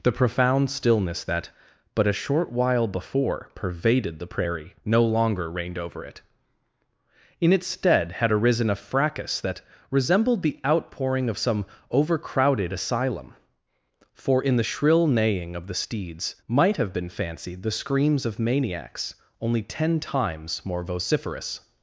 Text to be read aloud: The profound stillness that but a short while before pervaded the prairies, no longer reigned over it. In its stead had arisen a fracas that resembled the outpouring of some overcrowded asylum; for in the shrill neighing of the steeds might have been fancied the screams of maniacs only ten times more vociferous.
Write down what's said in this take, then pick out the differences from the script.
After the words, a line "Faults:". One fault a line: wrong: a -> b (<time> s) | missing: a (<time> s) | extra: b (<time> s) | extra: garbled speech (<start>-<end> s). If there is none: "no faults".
The profound stillness that but a short while before pervaded the prairie, no longer reigned over it. In its stead had arisen a fracas that resembled the outpouring of some overcrowded asylum; for in the shrill neighing of the steeds might have been fancied the screams of maniacs only ten times more vociferous.
Faults:
wrong: prairies -> prairie (4.3 s)